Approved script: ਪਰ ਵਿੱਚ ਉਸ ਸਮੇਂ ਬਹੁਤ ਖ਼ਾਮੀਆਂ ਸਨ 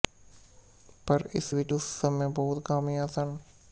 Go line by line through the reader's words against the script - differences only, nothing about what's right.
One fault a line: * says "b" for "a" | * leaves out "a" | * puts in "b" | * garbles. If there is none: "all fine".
* puts in "ਇਸ"